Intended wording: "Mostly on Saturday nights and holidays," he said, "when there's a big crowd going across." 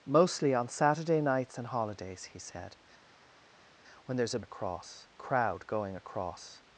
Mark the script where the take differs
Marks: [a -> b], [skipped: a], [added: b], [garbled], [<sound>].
"Mostly on Saturday nights and holidays," he said, "when there's a [big -> across] crowd going across."